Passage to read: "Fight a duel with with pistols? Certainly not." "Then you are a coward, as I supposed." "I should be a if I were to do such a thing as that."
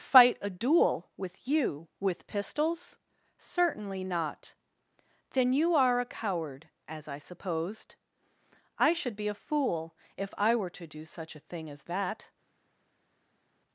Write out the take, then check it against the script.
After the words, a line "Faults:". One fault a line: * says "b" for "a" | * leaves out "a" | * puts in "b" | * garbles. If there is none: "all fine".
"Fight a duel with you, with pistols? Certainly not." "Then you are a coward, as I supposed." "I should be a fool if I were to do such a thing as that."
Faults:
* puts in "you"
* puts in "fool"